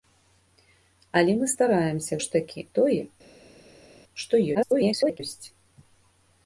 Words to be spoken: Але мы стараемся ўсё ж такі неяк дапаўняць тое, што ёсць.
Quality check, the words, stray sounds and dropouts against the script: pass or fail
fail